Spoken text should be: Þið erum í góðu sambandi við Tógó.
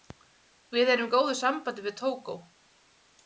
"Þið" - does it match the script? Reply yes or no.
no